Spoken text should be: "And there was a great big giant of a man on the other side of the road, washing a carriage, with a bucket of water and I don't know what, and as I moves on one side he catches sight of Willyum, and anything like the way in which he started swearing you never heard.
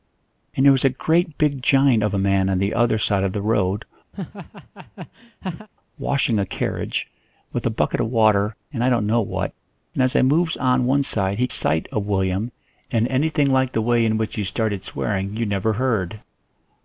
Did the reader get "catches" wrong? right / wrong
wrong